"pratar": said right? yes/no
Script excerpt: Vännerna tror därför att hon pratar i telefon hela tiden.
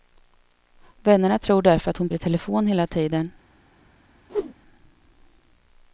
no